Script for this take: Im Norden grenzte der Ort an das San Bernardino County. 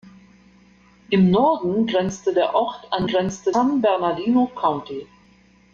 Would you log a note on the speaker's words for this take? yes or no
yes